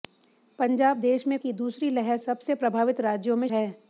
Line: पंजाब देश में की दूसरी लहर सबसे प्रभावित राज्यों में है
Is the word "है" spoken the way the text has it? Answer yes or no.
yes